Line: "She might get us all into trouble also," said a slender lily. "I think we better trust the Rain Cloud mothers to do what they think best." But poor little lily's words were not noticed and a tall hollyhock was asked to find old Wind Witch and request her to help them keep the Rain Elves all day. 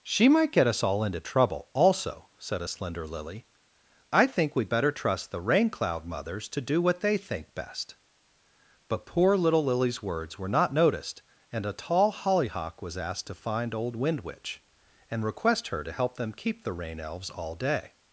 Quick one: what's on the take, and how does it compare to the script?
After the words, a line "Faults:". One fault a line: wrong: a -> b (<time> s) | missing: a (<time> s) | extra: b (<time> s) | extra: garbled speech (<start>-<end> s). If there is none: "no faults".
"She might get us all into trouble also," said a slender lily. "I think we better trust the Rain Cloud mothers to do what they think best." But poor little lily's words were not noticed and a tall hollyhock was asked to find old Wind Witch and request her to help them keep the Rain Elves all day.
Faults:
no faults